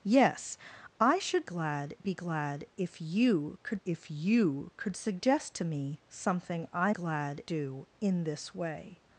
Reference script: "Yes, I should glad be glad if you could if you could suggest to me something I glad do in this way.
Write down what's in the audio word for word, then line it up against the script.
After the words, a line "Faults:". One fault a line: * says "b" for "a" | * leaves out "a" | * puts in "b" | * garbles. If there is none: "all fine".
"Yes, I should glad be glad if you could if you could suggest to me something I glad do in this way.
Faults:
all fine